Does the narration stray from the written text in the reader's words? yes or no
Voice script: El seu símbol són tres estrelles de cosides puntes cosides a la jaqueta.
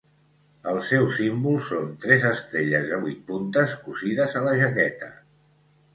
yes